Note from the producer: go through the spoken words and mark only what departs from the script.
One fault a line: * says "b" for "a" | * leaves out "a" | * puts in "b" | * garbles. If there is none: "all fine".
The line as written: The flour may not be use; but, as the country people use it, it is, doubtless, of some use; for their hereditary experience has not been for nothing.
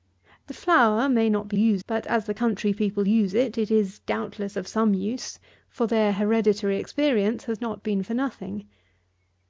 all fine